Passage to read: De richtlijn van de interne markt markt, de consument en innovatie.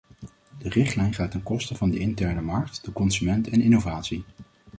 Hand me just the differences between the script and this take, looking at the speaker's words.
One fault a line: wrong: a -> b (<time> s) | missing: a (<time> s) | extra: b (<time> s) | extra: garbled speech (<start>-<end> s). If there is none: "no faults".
extra: gaat ten koste (1.1 s)
missing: markt (2.8 s)